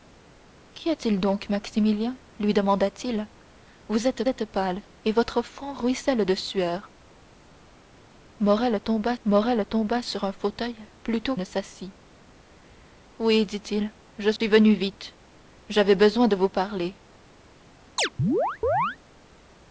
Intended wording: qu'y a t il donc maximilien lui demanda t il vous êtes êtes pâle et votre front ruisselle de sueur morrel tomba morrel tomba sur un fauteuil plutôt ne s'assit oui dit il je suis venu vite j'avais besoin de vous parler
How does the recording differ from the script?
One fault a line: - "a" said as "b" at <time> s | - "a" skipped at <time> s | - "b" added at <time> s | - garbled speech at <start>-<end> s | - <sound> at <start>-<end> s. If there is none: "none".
- dropout at 14.4-14.4 s
- chirp at 18.0-19.0 s